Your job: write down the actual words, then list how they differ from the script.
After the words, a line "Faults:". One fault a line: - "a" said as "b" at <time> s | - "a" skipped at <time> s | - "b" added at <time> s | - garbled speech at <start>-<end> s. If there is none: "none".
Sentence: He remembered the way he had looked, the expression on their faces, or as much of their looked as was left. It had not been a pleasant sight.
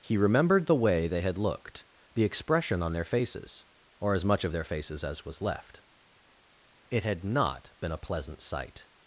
He remembered the way they had looked, the expression on their faces, or as much of their faces as was left. It had not been a pleasant sight.
Faults:
- "he" said as "they" at 1.1 s
- "looked" said as "faces" at 4.6 s